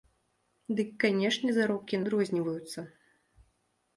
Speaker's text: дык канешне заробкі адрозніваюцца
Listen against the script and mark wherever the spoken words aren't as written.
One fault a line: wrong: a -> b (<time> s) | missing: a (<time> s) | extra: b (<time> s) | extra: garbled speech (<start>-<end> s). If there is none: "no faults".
no faults